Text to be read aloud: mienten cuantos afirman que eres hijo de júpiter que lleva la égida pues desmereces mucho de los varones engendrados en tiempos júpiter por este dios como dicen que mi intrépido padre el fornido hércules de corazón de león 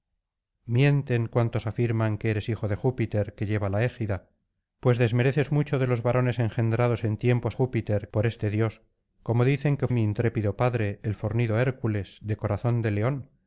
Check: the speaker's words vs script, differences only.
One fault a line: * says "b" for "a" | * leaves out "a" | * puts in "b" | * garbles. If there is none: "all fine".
all fine